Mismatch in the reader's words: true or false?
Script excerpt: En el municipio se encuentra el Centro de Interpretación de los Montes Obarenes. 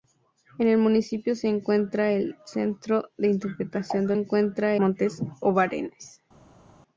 true